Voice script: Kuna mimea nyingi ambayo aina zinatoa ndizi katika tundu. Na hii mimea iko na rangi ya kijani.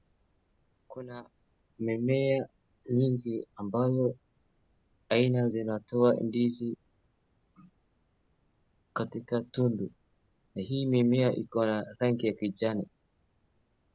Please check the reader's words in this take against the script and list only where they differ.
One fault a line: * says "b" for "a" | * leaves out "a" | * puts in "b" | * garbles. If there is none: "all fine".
all fine